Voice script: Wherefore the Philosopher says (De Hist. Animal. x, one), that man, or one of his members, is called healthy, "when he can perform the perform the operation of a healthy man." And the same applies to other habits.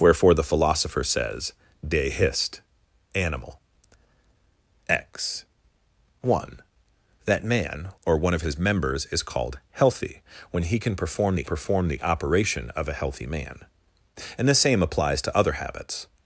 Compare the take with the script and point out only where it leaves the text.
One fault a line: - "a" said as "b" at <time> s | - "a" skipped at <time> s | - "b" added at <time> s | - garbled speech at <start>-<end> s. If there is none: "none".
none